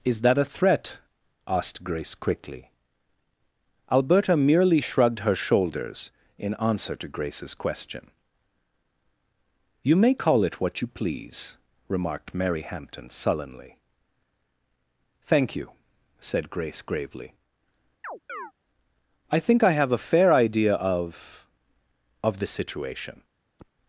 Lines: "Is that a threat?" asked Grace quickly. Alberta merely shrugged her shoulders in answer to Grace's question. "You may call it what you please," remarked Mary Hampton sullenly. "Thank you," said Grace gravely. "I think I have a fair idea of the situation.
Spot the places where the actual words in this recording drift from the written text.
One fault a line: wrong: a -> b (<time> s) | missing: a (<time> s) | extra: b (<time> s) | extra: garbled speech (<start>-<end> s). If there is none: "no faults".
extra: of (22.2 s)